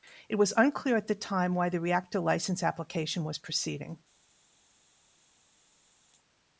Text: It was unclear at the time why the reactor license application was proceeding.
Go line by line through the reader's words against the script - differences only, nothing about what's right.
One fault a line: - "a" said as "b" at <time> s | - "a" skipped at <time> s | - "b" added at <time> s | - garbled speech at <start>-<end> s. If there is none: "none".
none